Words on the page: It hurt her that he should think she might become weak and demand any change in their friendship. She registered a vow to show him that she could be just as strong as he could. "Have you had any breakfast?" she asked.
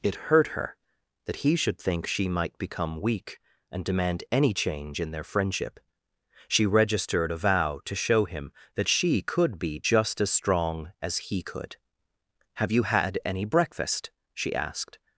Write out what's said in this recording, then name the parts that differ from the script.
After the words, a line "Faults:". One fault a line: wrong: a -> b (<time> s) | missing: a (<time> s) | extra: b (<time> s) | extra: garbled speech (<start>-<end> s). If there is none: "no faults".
It hurt her that he should think she might become weak and demand any change in their friendship. She registered a vow to show him that she could be just as strong as he could. "Have you had any breakfast?" she asked.
Faults:
no faults